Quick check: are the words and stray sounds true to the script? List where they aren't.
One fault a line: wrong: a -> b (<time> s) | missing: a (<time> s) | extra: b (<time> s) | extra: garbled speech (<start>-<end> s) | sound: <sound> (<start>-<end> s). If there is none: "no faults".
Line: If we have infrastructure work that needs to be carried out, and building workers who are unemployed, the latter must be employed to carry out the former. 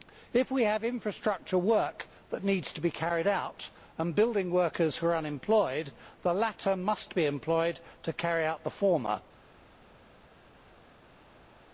no faults